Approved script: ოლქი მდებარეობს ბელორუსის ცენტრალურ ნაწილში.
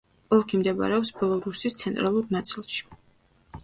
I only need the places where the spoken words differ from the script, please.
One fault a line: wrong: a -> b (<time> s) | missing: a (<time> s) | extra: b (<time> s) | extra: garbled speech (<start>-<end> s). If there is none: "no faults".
no faults